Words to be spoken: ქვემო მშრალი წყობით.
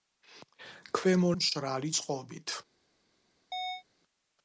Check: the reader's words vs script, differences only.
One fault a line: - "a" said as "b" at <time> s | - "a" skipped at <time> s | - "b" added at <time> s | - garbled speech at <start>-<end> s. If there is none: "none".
none